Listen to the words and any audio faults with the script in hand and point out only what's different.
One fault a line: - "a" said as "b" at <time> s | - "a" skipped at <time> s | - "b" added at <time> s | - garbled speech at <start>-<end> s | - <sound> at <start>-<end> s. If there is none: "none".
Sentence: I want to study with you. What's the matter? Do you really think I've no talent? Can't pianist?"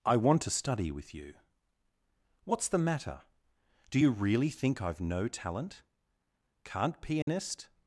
- dropout at 7.2-7.3 s